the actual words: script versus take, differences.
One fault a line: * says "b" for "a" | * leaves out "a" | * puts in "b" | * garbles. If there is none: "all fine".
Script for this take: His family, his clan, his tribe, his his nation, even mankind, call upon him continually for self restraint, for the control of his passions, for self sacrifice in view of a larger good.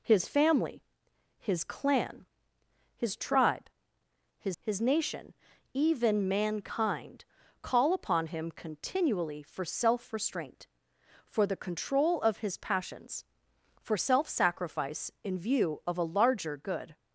all fine